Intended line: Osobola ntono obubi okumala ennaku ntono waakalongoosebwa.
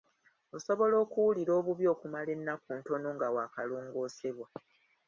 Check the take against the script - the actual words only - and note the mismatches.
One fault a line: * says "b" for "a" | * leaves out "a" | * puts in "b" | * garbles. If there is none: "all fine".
* says "okuwulira" for "ntono"
* puts in "nga"